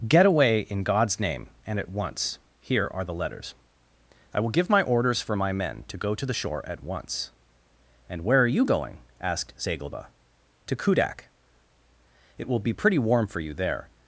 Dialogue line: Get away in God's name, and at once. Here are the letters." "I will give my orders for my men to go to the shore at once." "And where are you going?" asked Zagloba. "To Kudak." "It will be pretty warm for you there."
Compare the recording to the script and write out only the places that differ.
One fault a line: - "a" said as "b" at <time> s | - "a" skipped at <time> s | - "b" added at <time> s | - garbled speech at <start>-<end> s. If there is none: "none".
none